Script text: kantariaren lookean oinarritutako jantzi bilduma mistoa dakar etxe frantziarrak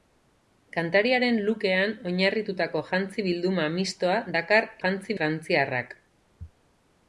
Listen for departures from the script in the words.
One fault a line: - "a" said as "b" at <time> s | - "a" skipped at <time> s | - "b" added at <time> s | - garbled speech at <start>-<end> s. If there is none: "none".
- "etxe" said as "jantzi" at 4.8 s